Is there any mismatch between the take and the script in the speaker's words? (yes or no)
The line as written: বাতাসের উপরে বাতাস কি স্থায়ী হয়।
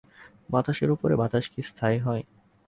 no